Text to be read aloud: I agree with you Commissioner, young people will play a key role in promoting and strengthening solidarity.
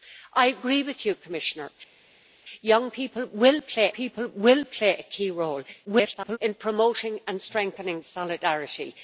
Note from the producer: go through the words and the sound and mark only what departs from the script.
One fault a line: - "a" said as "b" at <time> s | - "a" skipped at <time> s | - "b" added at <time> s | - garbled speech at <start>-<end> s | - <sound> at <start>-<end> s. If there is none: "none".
- "people will play" added at 3.9 s
- garbled speech at 5.8-6.4 s